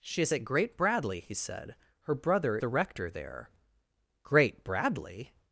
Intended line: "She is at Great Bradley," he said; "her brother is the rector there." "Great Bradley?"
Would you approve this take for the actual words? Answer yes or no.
no